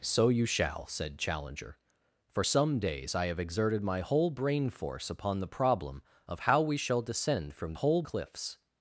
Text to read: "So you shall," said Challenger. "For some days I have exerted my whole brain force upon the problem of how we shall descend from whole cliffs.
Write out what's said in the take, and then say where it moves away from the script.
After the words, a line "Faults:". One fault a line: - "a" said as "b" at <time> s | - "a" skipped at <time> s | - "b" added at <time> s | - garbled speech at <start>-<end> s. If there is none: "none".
"So you shall," said Challenger. "For some days I have exerted my whole brain force upon the problem of how we shall descend from whole cliffs.
Faults:
none